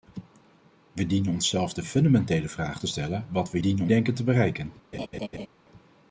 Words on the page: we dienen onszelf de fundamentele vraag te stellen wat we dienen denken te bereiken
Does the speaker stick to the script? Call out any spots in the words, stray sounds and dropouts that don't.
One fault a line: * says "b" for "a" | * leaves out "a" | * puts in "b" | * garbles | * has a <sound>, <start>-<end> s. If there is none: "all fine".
* has a laugh, 4.9-5.5 s